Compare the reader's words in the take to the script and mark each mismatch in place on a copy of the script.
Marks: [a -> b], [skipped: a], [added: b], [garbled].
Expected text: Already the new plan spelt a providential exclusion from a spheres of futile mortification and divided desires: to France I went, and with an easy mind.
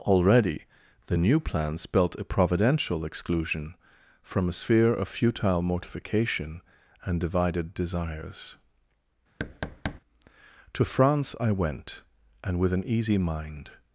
Already the new plan spelt a providential exclusion from a [spheres -> sphere] of futile mortification and divided desires: to France I went, and with an easy mind.